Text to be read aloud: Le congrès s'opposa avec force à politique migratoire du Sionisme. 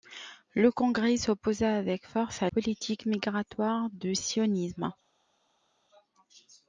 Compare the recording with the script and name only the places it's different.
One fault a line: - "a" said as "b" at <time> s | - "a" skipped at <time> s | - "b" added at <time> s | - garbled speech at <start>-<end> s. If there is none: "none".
none